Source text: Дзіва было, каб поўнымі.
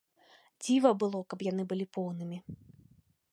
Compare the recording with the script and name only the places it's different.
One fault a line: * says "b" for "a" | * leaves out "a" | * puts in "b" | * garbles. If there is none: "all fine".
* puts in "яны былі"